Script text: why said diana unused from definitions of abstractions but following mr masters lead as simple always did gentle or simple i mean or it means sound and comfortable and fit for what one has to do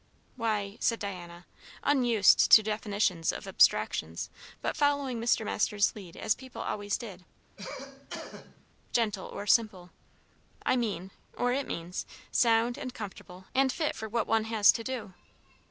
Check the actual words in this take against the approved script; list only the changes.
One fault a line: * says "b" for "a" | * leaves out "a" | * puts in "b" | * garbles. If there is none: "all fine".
* says "to" for "from"
* says "people" for "simple"